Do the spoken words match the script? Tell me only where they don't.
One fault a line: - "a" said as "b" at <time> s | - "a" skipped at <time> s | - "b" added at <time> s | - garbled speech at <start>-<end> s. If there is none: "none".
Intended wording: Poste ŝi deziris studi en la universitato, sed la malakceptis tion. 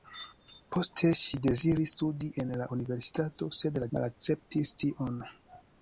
none